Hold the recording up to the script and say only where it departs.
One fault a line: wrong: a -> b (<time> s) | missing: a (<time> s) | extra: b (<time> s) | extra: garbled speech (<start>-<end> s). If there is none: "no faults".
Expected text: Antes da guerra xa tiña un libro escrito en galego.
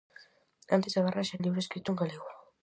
missing: tiña (1.4 s)